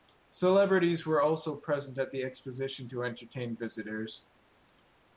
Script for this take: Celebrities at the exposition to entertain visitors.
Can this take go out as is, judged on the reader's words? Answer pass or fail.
fail